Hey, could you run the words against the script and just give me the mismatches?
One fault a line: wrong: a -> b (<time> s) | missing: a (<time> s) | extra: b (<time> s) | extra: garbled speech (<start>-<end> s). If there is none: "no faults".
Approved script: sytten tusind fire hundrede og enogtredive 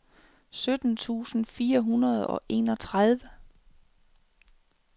no faults